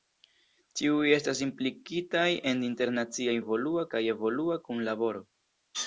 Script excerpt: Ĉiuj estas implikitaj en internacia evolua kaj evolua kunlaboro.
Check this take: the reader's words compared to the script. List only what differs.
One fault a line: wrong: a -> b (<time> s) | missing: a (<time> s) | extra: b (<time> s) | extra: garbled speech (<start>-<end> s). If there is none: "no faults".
no faults